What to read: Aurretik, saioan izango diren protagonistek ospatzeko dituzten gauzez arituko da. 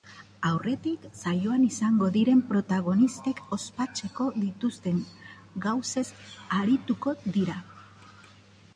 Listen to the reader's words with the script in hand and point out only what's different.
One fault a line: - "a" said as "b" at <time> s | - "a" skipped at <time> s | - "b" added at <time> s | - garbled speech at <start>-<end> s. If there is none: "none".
- "da" said as "dira" at 7.4 s